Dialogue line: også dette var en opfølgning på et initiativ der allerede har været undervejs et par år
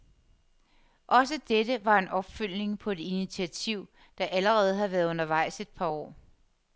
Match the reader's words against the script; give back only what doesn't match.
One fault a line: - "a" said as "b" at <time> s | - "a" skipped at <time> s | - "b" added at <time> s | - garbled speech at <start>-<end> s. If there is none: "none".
none